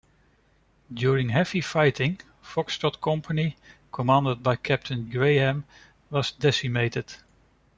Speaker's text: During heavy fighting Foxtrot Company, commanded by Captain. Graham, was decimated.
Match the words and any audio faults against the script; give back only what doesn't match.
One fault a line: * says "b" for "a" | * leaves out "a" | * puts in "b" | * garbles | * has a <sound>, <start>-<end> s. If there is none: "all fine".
all fine